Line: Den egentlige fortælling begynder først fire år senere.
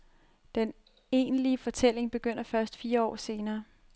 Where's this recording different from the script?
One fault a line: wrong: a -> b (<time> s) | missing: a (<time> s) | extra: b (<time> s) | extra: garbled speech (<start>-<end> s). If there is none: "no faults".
no faults